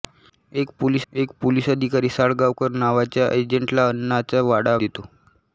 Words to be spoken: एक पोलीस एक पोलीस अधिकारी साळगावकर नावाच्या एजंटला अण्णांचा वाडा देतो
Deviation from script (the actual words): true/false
false